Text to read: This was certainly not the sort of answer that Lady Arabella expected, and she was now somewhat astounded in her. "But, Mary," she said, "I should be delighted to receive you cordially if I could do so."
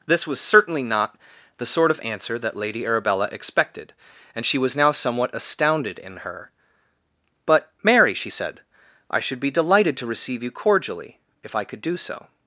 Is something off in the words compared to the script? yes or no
no